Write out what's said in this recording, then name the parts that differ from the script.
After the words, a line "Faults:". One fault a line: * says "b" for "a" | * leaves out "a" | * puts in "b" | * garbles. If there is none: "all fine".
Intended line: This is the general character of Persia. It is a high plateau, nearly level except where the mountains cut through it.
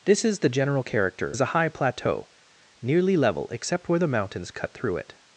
This is the general character is a high plateau, nearly level except where the mountains cut through it.
Faults:
* leaves out "of Persia It"